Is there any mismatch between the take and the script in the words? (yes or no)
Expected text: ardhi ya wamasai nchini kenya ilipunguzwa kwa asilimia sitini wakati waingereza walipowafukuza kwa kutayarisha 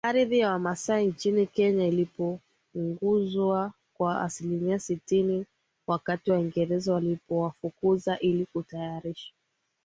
yes